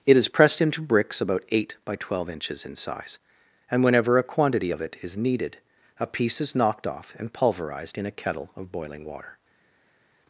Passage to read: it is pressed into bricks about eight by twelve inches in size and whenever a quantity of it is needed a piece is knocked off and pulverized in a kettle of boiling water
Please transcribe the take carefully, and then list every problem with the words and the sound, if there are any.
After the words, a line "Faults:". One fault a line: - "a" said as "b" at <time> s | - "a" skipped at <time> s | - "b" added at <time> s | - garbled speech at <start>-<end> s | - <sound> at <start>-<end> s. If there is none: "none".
it is pressed into bricks about eight by twelve inches in size and whenever a quantity of it is needed a piece is knocked off and pulverized in a kettle of boiling water
Faults:
none